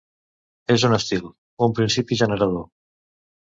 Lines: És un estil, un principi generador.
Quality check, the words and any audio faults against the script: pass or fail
pass